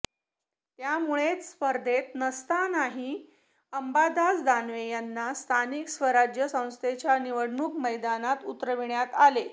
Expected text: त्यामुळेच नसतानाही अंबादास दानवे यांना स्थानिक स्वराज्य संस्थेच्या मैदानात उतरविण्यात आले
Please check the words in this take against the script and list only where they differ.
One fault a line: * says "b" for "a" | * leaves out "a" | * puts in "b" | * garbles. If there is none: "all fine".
* puts in "स्पर्धेत"
* puts in "निवडणूक"